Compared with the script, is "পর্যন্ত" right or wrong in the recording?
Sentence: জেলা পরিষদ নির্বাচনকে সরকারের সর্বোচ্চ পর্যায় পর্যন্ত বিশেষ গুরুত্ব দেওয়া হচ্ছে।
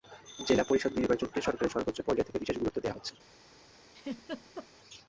wrong